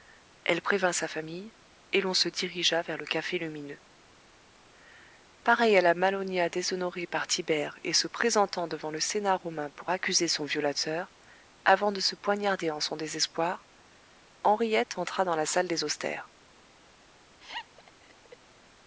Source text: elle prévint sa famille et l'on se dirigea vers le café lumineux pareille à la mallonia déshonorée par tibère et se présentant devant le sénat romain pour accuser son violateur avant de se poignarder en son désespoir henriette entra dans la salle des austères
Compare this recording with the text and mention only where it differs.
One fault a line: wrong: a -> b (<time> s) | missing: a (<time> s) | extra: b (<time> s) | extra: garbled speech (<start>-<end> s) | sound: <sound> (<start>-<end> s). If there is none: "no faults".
sound: laugh (17.4-18.4 s)